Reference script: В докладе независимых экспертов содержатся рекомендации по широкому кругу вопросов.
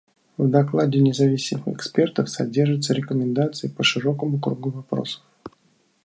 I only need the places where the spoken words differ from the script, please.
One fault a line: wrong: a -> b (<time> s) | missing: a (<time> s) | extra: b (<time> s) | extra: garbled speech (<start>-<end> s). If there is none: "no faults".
no faults